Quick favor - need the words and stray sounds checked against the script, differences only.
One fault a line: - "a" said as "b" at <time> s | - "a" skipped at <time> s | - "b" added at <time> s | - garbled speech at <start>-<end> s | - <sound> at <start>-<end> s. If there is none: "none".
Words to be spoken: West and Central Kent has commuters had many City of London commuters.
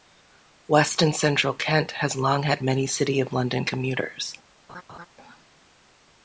- "commuters" said as "long" at 2.1 s
- laugh at 4.7-5.1 s